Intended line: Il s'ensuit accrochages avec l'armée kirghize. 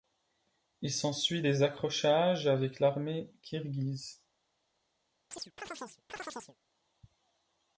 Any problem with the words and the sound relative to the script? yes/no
yes